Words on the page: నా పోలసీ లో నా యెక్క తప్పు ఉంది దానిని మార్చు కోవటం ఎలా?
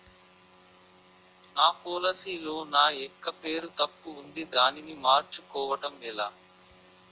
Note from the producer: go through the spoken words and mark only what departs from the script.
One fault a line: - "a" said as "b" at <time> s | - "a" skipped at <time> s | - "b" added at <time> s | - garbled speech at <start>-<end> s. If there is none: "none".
- "పేరు" added at 3.4 s